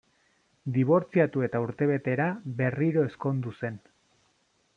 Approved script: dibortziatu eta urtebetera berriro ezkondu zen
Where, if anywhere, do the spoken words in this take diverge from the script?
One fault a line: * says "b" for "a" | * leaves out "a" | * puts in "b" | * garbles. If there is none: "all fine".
all fine